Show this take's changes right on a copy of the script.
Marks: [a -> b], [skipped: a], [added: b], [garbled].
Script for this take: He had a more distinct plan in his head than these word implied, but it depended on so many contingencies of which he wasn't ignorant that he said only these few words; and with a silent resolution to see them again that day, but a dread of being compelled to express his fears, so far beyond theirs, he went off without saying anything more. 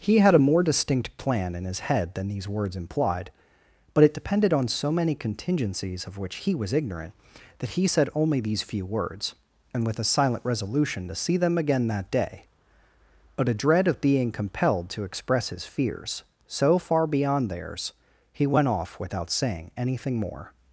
He had a more distinct plan in his head than these [word -> words] implied, but it depended on so many contingencies of which he [wasn't -> was] ignorant that he said only these few words; and with a silent resolution to see them again that day, but a dread of being compelled to express his fears, so far beyond theirs, he went off without saying anything more.